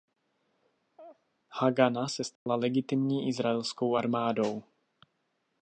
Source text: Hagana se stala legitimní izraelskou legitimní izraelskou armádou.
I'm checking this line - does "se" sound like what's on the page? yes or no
yes